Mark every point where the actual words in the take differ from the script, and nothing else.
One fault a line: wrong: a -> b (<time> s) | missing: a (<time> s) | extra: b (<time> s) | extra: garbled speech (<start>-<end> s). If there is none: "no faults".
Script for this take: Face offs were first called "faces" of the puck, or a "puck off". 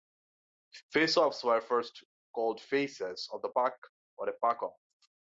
no faults